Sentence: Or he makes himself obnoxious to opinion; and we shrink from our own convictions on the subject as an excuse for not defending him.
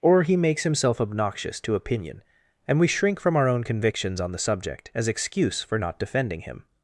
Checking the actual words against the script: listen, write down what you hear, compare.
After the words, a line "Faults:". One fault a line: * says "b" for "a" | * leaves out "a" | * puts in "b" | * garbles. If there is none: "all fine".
Or he makes himself obnoxious to opinion; and we shrink from our own convictions on the subject as excuse for not defending him.
Faults:
* leaves out "an"